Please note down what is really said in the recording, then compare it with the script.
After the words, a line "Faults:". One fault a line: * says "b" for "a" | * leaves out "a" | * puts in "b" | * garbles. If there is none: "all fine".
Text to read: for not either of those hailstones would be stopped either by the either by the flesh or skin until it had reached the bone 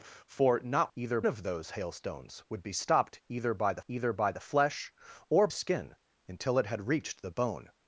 for not either of those hailstones would be stopped either by the either by the flesh or skin until it had reached the bone
Faults:
all fine